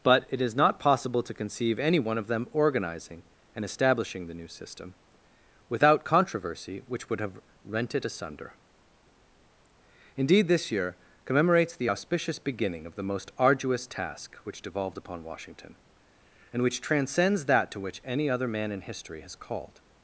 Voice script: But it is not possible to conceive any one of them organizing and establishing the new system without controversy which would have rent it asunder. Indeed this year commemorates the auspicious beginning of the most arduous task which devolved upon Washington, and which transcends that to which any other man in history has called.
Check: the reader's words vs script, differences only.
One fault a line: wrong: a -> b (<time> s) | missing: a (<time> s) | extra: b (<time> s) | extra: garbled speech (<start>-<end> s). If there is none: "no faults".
no faults